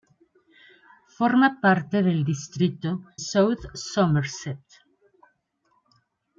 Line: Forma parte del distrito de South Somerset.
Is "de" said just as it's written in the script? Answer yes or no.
no